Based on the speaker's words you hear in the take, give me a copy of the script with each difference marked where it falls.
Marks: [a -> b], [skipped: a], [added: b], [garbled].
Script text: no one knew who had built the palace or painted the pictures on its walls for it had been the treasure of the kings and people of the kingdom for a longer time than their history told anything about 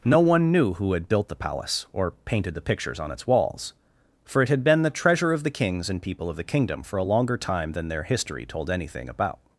no one knew who had built the palace or painted the pictures on its walls for it had been the treasure of the kings and people of the kingdom for a longer time than their history told anything about